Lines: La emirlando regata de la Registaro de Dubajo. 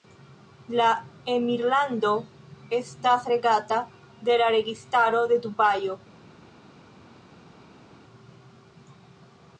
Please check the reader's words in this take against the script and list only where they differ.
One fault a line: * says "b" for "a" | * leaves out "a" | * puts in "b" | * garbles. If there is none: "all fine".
* puts in "estas"